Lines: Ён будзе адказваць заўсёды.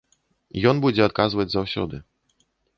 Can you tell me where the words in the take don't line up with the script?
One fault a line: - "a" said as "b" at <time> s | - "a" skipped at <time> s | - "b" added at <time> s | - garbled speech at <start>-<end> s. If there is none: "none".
none